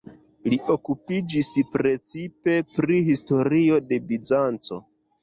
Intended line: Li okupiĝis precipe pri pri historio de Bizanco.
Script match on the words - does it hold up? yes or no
no